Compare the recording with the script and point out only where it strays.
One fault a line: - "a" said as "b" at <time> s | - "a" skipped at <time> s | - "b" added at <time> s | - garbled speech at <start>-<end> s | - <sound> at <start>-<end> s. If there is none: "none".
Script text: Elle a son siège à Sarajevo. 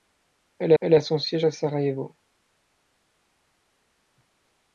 - "elle" added at 0.8 s